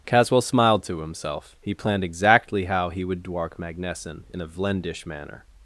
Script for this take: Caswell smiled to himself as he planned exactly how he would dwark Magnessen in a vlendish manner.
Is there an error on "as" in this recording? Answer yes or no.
yes